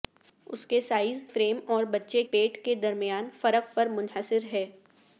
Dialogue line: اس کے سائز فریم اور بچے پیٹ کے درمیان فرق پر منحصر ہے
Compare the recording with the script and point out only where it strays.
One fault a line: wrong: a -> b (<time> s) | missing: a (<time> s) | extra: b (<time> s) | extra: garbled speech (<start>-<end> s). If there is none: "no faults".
no faults